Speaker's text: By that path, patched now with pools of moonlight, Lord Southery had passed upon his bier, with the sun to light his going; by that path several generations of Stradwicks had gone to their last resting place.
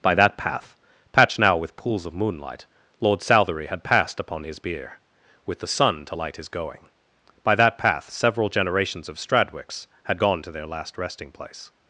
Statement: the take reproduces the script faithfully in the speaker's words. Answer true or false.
true